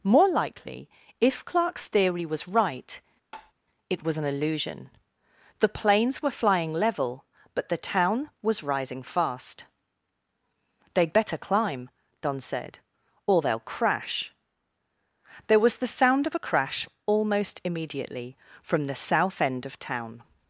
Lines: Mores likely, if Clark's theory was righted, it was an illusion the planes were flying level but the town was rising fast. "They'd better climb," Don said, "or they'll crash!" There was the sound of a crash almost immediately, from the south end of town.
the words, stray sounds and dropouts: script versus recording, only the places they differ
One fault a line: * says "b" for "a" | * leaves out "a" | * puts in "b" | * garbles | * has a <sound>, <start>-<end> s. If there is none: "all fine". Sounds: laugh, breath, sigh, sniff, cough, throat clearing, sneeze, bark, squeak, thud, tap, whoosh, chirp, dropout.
* says "More" for "Mores"
* says "right" for "righted"
* has a tap, 3.3-3.5 s